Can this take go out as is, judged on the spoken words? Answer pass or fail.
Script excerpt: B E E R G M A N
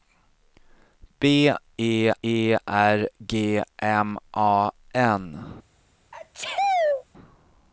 pass